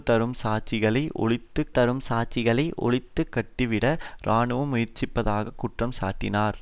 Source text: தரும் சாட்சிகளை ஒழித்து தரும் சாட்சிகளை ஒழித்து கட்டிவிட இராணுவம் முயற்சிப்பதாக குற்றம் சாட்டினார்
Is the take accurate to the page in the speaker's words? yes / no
yes